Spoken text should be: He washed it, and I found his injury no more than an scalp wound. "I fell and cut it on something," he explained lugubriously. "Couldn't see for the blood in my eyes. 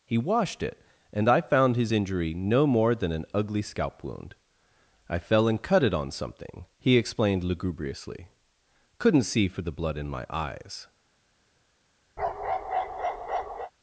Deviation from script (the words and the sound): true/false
true